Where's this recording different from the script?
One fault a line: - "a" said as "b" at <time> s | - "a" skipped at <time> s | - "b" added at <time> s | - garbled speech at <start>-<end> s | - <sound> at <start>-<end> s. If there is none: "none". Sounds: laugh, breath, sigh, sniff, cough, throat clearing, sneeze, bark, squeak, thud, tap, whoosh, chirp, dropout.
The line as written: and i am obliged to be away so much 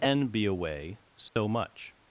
- "i am obliged to" skipped at 0.3 s
- dropout at 1.3-1.4 s